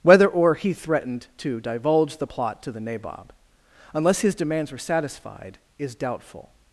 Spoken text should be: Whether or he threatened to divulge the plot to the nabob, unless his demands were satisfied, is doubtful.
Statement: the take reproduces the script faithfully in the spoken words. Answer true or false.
true